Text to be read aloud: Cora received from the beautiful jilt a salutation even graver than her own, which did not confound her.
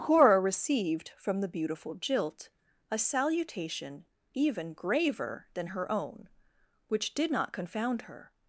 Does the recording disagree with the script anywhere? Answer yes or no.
no